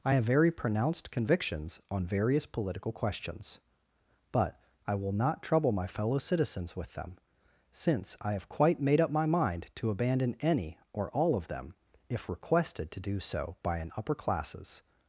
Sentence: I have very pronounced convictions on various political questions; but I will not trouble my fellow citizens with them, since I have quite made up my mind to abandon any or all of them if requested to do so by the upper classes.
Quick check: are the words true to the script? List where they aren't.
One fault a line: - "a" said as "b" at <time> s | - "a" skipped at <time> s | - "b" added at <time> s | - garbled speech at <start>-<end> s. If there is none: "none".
- "the" said as "an" at 13.8 s